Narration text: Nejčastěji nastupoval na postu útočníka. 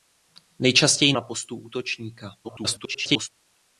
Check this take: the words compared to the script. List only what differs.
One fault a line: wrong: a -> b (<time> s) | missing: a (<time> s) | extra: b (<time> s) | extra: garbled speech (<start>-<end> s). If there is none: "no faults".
missing: nastupoval (1.1 s)
extra: garbled speech (2.4-3.3 s)